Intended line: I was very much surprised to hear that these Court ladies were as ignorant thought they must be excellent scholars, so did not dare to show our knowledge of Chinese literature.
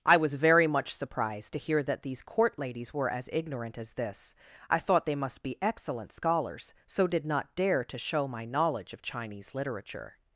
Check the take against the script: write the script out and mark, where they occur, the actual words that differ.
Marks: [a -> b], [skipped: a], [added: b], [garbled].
I was very much surprised to hear that these Court ladies were as ignorant [added: as this I] thought they must be excellent scholars, so did not dare to show [our -> my] knowledge of Chinese literature.